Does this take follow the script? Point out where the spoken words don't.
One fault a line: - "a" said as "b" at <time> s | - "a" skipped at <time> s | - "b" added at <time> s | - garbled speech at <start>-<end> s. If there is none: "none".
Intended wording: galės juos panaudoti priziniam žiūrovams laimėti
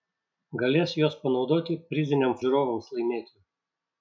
none